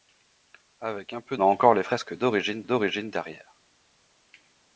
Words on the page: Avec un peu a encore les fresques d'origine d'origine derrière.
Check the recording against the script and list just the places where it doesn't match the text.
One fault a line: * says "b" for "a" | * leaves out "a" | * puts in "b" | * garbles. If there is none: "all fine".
all fine